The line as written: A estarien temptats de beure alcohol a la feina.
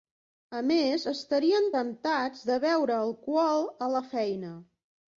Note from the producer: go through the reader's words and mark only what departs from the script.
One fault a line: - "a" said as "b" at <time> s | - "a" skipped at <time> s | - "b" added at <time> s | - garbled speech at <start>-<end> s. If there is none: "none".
- "més" added at 0.7 s